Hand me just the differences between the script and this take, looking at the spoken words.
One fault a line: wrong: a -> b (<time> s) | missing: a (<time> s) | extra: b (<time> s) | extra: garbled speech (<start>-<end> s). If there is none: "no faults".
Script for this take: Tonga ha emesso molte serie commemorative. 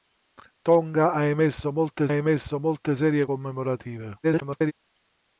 extra: emesso molte (2.1 s)
extra: garbled speech (4.2-4.7 s)